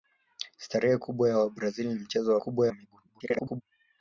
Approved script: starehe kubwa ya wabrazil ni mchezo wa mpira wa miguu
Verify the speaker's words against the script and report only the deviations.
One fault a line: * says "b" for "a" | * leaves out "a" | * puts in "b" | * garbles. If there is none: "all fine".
* says "kubwa" for "mpira"
* garbles